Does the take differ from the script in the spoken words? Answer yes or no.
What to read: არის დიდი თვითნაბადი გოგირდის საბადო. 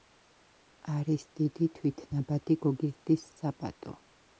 no